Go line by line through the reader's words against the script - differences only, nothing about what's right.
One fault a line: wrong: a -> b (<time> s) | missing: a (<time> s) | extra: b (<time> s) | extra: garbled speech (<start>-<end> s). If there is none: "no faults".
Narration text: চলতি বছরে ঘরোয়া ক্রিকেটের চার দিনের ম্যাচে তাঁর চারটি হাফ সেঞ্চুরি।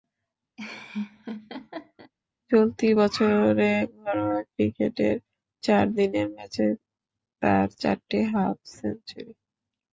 no faults